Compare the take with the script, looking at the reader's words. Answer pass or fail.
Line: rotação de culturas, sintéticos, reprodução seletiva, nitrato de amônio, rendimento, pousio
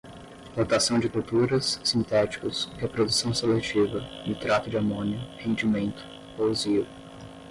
pass